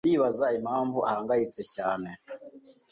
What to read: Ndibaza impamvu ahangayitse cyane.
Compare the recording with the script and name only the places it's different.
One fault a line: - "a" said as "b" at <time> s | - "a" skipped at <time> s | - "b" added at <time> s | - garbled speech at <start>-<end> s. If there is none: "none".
none